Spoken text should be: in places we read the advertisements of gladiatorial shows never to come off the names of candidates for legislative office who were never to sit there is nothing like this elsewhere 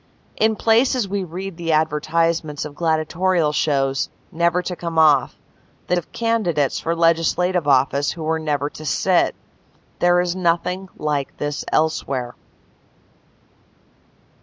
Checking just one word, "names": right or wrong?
wrong